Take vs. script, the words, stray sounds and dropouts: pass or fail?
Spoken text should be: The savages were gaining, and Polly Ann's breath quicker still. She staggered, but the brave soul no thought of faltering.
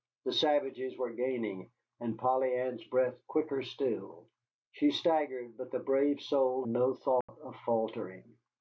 fail